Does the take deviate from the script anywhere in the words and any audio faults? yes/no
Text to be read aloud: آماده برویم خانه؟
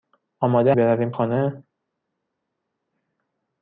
no